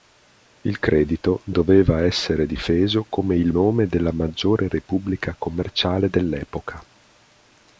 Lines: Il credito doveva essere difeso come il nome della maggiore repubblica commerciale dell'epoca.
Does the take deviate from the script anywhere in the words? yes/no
no